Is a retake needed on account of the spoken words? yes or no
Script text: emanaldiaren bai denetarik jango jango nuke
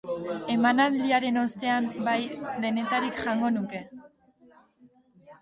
yes